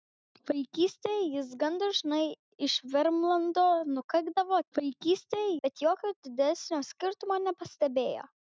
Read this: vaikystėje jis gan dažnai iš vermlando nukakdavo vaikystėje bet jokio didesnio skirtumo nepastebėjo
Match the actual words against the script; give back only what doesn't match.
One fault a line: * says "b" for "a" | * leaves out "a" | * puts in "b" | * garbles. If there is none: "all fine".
all fine